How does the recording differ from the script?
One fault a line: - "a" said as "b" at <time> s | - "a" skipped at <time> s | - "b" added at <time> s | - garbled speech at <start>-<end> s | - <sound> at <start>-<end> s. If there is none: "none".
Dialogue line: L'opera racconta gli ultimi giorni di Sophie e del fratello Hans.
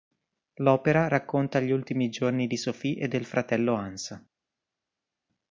none